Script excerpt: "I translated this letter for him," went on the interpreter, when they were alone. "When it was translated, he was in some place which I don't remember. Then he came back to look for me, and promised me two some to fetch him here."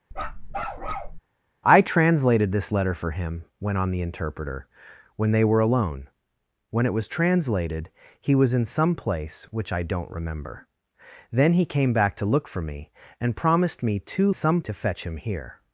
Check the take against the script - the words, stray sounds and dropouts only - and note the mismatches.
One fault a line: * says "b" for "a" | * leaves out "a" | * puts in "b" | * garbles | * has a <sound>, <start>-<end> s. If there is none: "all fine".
* has a bark, 0.1-1.2 s